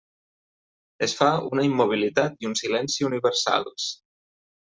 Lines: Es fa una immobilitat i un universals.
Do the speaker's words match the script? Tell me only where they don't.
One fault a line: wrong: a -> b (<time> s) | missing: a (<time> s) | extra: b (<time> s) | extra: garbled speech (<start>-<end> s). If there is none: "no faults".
extra: silenci (2.6 s)